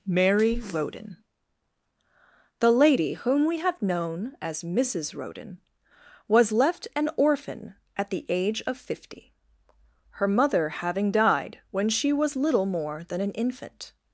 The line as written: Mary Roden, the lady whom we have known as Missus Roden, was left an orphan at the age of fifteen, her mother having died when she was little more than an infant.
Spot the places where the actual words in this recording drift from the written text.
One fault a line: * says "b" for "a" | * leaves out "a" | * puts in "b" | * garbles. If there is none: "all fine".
* says "fifty" for "fifteen"